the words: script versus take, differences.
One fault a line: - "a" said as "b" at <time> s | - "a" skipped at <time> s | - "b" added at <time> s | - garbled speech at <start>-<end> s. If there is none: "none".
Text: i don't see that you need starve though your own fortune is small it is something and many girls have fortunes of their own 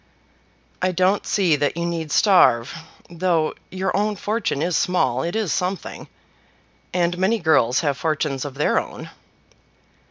none